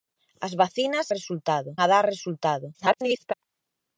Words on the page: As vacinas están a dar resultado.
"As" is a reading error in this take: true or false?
false